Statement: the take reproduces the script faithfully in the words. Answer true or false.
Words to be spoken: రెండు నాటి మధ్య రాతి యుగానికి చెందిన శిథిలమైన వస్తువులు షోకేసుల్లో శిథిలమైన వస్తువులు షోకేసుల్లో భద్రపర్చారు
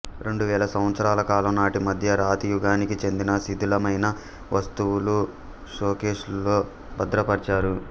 false